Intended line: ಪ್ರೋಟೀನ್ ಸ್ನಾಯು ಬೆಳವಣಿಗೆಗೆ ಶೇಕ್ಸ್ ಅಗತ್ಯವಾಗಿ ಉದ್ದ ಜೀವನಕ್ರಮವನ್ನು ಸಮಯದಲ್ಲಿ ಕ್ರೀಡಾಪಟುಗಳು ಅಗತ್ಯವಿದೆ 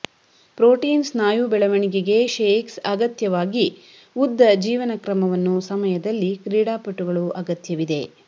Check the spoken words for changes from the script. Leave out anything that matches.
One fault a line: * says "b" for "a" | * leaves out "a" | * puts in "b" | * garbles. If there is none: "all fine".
all fine